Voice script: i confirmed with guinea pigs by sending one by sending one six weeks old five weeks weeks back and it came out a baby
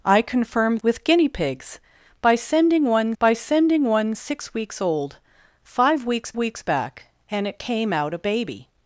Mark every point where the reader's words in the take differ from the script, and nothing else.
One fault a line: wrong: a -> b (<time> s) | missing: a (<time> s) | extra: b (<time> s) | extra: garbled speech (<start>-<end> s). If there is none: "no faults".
no faults